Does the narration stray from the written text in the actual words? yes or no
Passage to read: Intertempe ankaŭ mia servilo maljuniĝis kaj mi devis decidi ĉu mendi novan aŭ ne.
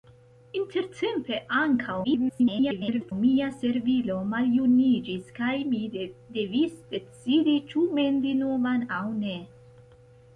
yes